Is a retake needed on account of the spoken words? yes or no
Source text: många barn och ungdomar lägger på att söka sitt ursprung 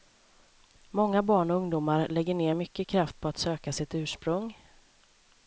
yes